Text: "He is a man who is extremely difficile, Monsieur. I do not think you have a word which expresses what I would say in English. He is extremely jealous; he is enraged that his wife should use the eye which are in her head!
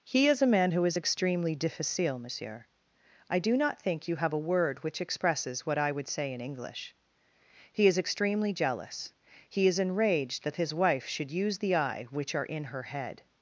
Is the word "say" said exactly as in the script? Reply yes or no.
yes